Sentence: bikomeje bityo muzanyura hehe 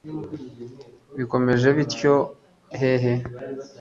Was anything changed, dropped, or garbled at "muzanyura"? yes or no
yes